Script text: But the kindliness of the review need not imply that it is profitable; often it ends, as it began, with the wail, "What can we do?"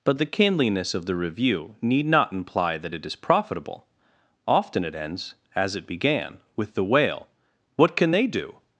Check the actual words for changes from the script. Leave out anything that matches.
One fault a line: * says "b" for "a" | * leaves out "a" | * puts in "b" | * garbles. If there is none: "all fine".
* says "they" for "we"